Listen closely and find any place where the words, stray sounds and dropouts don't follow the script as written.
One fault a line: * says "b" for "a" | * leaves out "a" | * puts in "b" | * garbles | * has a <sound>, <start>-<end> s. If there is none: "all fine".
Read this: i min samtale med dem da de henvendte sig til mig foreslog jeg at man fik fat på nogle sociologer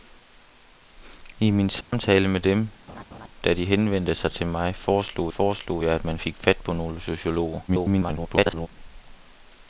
* has a dropout, 1.8-1.9 s
* has a laugh, 2.9-3.3 s
* puts in "foreslog"
* garbles